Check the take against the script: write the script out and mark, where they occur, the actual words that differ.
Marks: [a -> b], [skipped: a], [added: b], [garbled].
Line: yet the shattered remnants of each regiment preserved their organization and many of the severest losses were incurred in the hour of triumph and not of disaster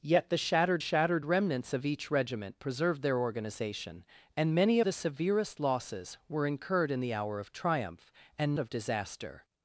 yet the shattered [added: shattered] remnants of each regiment preserved their organization and many [skipped: of] the severest losses were incurred in the hour of triumph and [skipped: not] of disaster